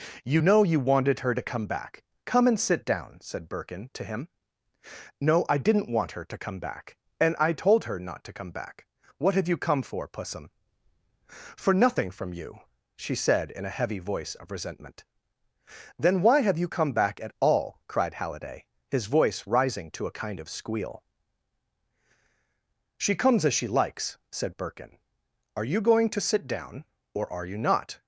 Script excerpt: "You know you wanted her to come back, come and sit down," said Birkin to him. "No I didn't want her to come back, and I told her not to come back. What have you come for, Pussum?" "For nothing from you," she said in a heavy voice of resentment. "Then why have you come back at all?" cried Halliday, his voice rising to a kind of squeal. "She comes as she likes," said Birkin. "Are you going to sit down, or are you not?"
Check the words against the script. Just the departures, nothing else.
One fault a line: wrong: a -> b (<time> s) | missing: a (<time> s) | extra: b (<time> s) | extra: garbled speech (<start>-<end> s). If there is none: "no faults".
no faults